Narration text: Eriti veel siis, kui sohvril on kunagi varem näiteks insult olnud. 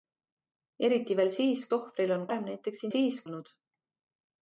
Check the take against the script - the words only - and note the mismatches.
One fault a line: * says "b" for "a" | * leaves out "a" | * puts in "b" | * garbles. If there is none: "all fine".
* leaves out "kui"
* leaves out "kunagi"
* says "siis" for "insult"